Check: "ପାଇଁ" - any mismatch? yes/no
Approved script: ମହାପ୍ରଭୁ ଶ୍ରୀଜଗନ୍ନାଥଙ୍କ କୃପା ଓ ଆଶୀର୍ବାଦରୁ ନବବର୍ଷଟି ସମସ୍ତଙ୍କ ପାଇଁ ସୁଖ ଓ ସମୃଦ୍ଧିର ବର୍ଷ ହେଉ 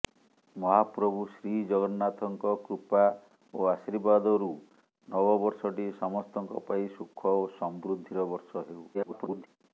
no